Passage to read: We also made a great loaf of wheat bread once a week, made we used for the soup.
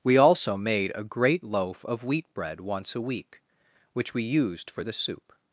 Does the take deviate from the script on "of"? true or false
false